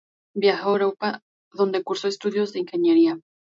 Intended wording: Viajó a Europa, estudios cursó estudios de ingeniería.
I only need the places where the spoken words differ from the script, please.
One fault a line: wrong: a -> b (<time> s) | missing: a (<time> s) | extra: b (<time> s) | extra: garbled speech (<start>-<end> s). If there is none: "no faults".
wrong: estudios -> donde (1.5 s)